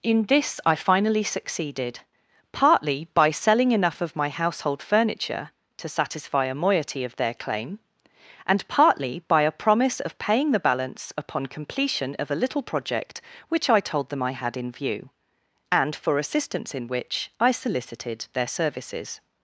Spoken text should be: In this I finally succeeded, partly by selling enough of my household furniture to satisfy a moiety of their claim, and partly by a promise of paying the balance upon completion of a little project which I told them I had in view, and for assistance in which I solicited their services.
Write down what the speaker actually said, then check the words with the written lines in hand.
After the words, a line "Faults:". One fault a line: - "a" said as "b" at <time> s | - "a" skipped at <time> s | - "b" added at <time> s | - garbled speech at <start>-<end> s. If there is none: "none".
In this I finally succeeded, partly by selling enough of my household furniture to satisfy a moiety of their claim, and partly by a promise of paying the balance upon completion of a little project which I told them I had in view, and for assistance in which I solicited their services.
Faults:
none